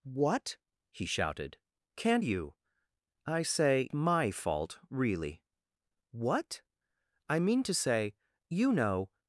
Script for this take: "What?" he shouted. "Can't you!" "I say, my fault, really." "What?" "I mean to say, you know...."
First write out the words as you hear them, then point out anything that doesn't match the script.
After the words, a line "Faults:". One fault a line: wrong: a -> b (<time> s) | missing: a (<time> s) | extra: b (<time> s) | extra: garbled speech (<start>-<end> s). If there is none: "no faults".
"What?" he shouted. "Can't you!" "I say, my fault, really." "What?" "I mean to say, you know...."
Faults:
no faults